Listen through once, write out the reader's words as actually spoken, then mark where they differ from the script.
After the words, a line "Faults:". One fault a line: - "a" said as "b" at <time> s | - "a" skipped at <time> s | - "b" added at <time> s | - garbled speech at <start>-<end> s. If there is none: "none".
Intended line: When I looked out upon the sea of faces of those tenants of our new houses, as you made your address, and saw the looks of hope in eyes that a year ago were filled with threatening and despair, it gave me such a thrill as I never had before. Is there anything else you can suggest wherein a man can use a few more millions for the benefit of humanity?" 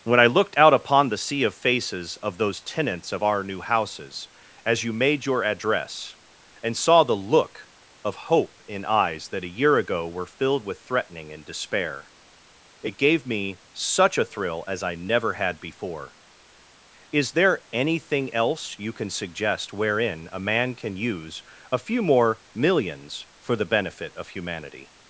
When I looked out upon the sea of faces of those tenants of our new houses, as you made your address, and saw the look of hope in eyes that a year ago were filled with threatening and despair, it gave me such a thrill as I never had before. Is there anything else you can suggest wherein a man can use a few more millions for the benefit of humanity?"
Faults:
- "looks" said as "look" at 7.2 s